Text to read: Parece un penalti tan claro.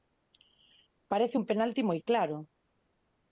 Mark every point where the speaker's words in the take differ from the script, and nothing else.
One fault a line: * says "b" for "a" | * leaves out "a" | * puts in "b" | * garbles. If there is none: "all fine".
* says "moi" for "tan"